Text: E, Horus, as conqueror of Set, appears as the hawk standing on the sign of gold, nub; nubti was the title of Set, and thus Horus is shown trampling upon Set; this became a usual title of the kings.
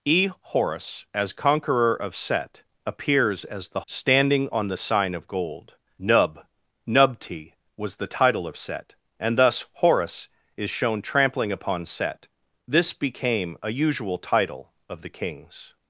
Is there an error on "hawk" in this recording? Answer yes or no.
yes